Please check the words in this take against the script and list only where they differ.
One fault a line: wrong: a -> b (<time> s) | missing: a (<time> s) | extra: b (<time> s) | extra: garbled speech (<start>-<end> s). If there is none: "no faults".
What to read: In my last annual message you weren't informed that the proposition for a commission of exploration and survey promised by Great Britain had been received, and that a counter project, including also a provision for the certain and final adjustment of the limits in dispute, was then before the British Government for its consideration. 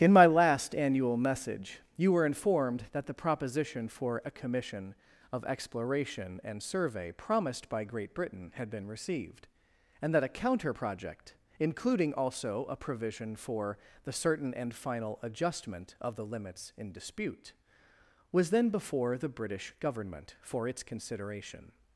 wrong: weren't -> were (2.1 s)